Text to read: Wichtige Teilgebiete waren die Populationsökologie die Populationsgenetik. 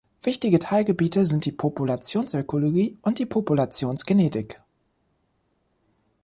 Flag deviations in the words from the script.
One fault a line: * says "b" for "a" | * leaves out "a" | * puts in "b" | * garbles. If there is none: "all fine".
* says "sind" for "waren"
* puts in "und"